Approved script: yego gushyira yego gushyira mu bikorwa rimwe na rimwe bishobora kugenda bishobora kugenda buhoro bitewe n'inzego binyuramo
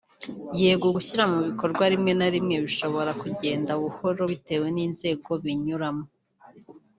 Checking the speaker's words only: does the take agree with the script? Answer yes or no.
no